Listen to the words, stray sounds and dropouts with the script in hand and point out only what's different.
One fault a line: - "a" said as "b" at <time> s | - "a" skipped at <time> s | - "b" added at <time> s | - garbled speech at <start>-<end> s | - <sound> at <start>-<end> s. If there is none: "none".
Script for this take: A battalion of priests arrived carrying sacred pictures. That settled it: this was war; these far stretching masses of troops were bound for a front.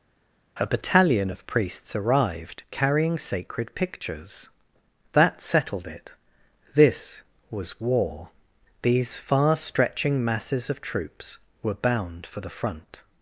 - "a" said as "the" at 12.4 s